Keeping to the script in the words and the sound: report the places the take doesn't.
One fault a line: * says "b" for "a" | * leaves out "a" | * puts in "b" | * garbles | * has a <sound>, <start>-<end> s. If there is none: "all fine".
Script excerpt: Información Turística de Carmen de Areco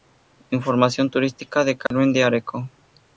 * has a dropout, 1.9-1.9 s